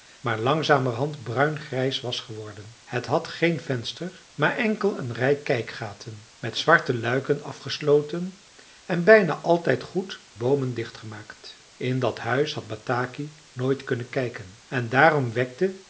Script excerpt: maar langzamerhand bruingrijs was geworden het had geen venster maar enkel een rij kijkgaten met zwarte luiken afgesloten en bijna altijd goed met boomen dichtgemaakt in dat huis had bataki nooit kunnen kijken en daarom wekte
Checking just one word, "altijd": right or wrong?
right